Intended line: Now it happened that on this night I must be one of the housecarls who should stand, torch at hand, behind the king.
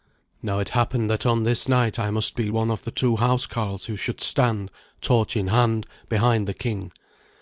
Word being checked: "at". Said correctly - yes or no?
no